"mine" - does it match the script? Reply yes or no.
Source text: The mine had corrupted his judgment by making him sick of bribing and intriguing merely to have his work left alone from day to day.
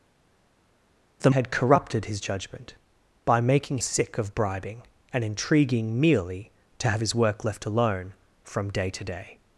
no